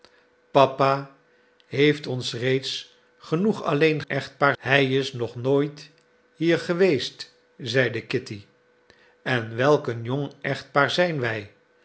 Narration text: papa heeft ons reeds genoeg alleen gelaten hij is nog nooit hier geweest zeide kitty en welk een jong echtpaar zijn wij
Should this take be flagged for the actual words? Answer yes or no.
yes